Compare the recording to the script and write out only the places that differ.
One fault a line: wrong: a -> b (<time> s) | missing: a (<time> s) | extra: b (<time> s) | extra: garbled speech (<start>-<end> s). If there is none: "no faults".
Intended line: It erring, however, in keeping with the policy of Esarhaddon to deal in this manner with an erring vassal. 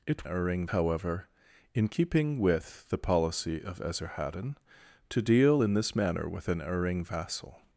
no faults